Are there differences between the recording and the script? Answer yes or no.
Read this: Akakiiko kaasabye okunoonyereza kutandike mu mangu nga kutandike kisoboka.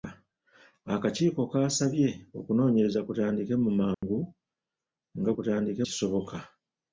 no